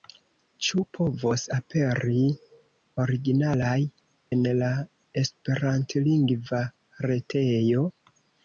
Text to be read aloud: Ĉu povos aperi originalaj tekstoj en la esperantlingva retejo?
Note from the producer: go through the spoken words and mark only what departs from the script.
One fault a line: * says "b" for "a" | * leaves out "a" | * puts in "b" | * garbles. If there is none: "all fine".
* leaves out "tekstoj"